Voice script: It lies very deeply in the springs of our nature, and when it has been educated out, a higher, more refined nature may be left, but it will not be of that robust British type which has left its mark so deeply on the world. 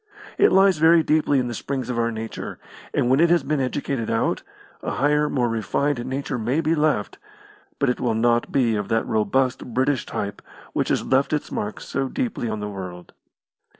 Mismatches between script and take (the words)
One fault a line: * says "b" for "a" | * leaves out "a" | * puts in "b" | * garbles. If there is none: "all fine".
all fine